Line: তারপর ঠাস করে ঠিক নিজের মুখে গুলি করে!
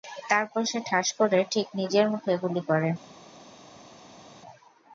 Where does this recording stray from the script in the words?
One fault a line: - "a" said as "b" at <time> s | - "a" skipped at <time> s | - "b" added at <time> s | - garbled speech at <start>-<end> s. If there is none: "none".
- "সে" added at 0.6 s